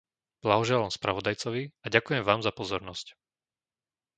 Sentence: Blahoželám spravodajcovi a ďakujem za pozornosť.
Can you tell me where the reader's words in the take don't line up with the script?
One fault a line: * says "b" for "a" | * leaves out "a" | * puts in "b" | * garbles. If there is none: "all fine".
* puts in "vám"